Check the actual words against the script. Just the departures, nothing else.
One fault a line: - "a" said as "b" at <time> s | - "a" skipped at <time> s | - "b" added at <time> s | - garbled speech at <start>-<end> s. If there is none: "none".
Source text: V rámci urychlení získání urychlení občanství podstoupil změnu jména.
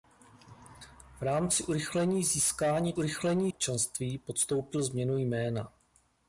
none